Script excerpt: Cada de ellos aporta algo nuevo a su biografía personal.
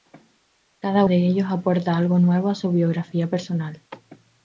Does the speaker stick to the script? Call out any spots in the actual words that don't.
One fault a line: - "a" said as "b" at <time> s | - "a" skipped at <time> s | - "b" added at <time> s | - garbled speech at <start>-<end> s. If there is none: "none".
none